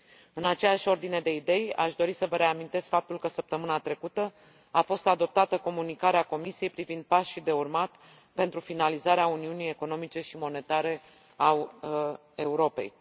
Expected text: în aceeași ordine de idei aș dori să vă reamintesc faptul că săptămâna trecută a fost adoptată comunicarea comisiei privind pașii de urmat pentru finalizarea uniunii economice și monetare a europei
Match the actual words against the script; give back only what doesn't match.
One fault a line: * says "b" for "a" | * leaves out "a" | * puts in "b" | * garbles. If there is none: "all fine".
all fine